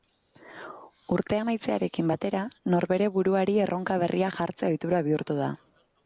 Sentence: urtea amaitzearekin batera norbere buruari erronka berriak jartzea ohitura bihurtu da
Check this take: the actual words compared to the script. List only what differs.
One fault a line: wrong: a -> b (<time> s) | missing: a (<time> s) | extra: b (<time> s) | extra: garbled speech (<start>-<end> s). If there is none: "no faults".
no faults